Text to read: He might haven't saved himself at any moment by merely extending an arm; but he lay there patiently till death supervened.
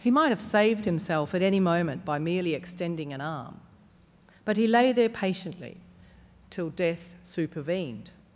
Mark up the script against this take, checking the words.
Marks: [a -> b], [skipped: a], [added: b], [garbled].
He might [haven't -> have] saved himself at any moment by merely extending an arm; but he lay there patiently till death supervened.